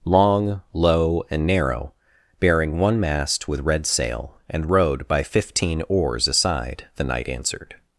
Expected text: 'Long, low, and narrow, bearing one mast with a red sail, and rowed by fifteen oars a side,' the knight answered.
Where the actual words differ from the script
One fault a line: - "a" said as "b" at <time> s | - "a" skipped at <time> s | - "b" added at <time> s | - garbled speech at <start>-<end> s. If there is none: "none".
- "a" skipped at 3.6 s